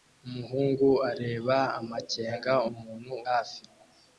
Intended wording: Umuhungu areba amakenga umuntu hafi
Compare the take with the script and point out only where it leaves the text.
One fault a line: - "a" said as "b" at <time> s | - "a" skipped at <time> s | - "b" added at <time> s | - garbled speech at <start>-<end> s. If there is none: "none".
none